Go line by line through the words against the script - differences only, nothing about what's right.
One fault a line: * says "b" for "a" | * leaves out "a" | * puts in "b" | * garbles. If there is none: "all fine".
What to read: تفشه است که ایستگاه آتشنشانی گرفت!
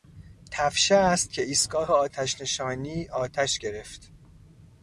* puts in "آتش"